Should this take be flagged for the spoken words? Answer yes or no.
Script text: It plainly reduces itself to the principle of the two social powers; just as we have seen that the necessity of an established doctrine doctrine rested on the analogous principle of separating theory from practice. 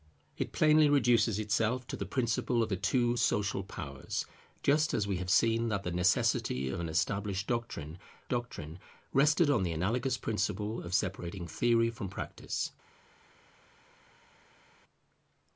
no